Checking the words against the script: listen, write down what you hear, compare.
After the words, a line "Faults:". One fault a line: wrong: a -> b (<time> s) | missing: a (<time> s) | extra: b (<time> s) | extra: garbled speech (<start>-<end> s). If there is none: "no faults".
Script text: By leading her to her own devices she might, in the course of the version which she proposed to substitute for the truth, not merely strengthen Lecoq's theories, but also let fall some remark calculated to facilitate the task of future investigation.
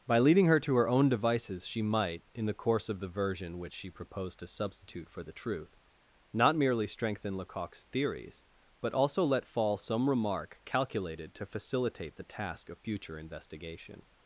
By leading her to her own devices she might, in the course of the version which she proposed to substitute for the truth, not merely strengthen Lecoq's theories, but also let fall some remark calculated to facilitate the task of future investigation.
Faults:
no faults